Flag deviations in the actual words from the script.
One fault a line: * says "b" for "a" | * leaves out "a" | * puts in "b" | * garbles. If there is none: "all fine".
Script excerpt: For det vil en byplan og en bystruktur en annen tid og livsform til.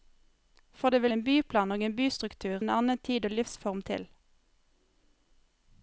all fine